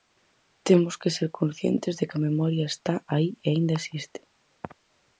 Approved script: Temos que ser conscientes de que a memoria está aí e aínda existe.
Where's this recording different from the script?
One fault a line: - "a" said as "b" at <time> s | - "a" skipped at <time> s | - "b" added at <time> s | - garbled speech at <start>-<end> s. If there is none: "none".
none